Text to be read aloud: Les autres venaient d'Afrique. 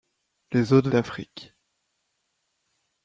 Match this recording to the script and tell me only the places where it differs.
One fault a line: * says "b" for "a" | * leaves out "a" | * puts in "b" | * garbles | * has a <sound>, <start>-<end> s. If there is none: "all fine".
* leaves out "venaient"